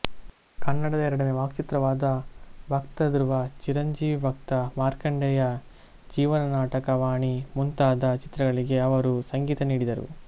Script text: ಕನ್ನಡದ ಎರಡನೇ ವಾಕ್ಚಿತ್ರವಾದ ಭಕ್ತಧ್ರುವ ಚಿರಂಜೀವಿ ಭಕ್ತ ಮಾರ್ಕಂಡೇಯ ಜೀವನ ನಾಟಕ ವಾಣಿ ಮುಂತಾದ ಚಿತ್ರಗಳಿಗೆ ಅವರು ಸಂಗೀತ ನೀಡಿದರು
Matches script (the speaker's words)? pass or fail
pass